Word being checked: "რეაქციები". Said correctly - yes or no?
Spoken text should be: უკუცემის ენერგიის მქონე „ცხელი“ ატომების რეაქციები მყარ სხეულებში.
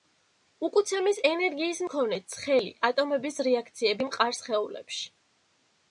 yes